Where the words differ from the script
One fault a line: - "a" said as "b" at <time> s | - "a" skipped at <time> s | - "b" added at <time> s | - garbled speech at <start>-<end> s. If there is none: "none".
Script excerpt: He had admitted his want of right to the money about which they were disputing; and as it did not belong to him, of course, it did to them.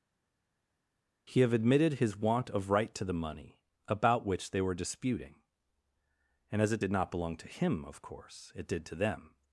- "had" said as "have" at 1.4 s